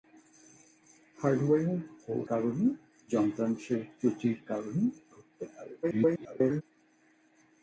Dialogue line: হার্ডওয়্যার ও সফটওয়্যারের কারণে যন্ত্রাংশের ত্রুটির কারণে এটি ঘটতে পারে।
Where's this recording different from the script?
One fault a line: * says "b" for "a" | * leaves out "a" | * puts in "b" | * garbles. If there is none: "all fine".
* leaves out "সফটওয়্যারের"
* leaves out "এটি"
* garbles